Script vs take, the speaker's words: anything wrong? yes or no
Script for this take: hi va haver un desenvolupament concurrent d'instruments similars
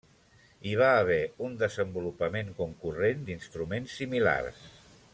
no